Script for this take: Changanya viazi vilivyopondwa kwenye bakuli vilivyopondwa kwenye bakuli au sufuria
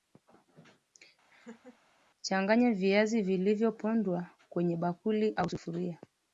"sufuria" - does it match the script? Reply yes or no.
yes